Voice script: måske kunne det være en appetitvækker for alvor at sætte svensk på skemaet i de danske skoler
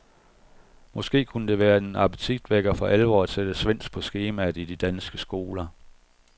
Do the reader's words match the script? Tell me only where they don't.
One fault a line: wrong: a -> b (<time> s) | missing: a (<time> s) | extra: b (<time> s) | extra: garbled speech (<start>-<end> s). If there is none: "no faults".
no faults